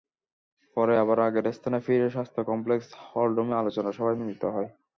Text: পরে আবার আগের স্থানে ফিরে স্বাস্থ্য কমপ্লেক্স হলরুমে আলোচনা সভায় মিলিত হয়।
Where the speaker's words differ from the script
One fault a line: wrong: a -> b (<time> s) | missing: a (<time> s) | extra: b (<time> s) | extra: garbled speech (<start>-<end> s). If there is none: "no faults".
no faults